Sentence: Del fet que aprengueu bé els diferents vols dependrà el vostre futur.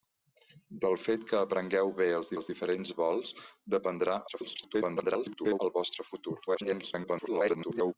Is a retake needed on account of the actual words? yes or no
yes